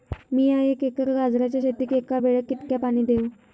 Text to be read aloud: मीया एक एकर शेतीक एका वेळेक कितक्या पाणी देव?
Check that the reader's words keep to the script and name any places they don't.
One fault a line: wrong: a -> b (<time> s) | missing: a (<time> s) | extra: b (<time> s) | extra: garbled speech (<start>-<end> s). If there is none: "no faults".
extra: गाजराच्या (1.1 s)